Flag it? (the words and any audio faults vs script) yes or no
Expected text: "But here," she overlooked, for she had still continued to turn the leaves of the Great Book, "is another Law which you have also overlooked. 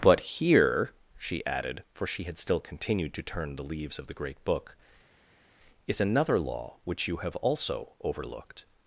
yes